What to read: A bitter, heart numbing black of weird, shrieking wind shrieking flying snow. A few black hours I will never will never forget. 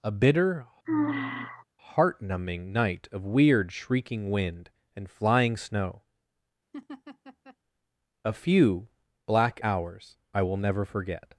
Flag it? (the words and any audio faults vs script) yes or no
yes